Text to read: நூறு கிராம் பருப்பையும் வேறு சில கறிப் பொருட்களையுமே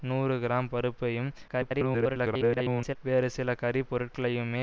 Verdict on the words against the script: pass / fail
fail